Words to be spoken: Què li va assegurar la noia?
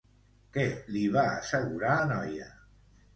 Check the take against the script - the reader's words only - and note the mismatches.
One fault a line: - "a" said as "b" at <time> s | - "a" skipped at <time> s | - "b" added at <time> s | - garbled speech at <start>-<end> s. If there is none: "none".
none